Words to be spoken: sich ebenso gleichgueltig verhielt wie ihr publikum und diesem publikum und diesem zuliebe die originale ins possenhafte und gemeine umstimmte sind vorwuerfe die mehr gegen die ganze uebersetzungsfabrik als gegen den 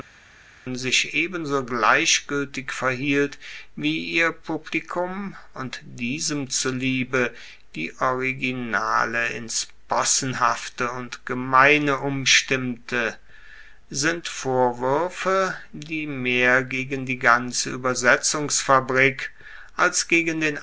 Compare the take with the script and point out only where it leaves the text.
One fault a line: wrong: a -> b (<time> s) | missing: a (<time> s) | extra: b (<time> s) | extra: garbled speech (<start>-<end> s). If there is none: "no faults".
missing: publikum und diesem (6.5 s)